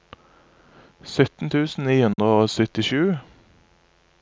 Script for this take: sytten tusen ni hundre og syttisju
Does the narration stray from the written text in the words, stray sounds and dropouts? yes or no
yes